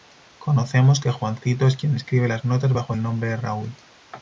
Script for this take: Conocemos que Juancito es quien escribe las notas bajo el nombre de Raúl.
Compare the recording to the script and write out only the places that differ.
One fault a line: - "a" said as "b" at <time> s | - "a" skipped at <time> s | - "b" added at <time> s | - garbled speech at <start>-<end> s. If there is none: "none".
none